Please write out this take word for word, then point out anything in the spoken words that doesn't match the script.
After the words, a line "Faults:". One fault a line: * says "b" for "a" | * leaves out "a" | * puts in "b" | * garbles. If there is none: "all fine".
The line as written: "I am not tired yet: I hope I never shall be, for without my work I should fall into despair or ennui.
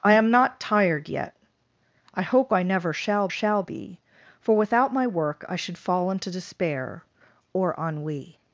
"I am not tired yet: I hope I never shall shall be, for without my work I should fall into despair or ennui.
Faults:
* puts in "shall"